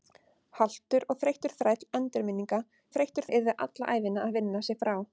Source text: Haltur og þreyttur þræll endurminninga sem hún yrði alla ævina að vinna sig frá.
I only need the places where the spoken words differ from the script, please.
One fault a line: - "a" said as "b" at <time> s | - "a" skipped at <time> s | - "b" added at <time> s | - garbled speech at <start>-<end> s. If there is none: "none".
- "sem" said as "þreyttur" at 3.0 s